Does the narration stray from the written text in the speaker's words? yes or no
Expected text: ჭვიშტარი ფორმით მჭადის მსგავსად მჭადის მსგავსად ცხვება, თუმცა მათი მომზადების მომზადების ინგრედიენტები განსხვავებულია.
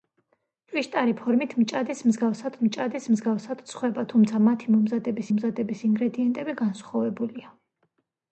no